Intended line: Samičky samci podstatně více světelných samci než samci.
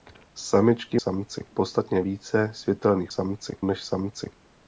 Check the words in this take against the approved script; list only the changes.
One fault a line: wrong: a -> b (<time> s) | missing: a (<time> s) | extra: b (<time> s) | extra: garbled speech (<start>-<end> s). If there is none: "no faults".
no faults